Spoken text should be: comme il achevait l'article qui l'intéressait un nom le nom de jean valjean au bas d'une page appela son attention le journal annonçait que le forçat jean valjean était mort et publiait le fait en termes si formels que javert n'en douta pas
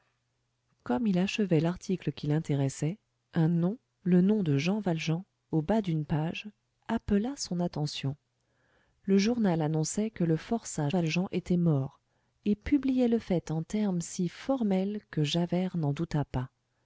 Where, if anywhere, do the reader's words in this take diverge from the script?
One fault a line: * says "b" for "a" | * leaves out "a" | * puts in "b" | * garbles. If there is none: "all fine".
* leaves out "jean"